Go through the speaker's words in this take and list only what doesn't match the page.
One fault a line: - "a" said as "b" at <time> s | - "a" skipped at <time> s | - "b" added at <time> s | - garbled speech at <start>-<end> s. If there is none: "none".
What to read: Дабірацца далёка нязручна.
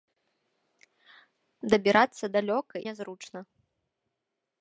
none